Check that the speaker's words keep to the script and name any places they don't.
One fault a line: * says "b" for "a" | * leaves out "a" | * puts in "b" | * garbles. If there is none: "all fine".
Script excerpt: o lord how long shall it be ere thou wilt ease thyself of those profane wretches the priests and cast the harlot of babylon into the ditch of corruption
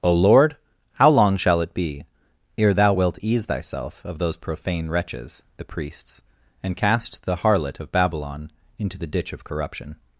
all fine